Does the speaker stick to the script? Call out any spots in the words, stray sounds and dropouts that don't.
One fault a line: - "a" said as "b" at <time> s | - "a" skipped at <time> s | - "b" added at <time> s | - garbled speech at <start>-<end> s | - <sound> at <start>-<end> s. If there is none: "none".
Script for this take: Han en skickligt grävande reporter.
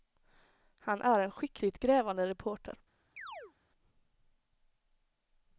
- "är" added at 1.0 s
- chirp at 3.2-3.5 s